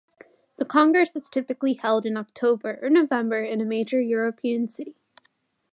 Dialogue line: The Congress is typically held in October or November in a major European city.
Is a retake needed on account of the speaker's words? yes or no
no